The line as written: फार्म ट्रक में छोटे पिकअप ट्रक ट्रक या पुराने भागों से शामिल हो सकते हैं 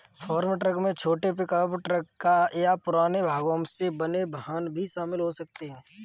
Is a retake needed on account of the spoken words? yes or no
yes